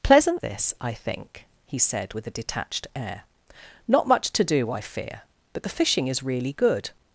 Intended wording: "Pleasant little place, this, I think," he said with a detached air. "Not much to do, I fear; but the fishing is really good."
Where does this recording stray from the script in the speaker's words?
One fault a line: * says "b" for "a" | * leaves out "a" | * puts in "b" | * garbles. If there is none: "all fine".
* leaves out "little place"